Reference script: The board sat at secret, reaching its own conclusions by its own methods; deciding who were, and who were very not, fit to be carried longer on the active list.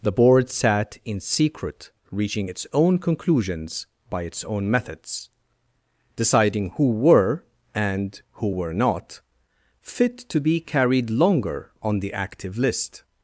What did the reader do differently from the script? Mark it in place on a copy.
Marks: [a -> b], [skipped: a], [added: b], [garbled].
The board sat [at -> in] secret, reaching its own conclusions by its own methods; deciding who were, and who were [skipped: very] not, fit to be carried longer on the active list.